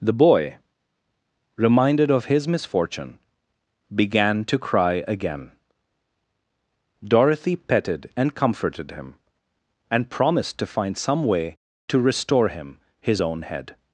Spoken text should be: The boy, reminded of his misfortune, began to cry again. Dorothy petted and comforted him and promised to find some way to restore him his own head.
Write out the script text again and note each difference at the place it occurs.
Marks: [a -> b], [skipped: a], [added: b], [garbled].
The boy, reminded of his misfortune, began to cry again. Dorothy petted and comforted him and promised to find some way to restore him his own head.